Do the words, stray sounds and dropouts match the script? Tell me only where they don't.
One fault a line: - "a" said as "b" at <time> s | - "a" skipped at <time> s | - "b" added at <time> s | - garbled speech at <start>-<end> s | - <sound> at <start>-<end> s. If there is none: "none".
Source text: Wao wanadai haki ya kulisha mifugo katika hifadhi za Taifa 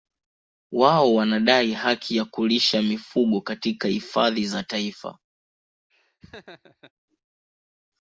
- laugh at 5.9-6.9 s